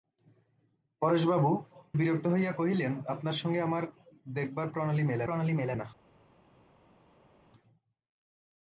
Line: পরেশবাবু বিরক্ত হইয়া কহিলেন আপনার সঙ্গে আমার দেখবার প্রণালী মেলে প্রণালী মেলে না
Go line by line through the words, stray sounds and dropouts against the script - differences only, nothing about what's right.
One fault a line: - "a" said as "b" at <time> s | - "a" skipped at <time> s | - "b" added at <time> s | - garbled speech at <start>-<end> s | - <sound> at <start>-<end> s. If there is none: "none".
none